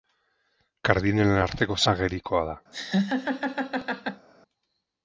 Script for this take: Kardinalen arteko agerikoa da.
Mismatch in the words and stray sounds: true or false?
true